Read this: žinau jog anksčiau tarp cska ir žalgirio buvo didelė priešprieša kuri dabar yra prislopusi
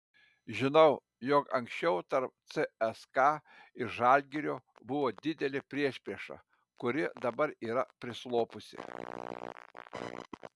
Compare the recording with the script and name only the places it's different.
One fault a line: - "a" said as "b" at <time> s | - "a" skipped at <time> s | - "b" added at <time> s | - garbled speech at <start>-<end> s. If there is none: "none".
none